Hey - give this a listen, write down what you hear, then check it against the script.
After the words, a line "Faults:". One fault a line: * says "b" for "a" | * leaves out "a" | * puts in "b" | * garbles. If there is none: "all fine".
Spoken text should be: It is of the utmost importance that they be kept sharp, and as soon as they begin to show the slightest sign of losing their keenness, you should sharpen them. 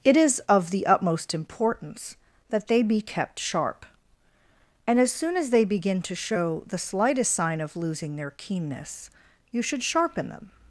It is of the utmost importance that they be kept sharp, and as soon as they begin to show the slightest sign of losing their keenness, you should sharpen them.
Faults:
all fine